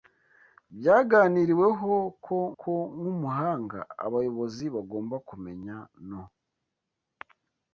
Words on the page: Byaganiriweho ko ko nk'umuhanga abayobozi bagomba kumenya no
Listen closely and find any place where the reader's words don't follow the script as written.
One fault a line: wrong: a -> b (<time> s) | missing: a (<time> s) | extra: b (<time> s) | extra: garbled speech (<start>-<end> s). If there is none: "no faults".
no faults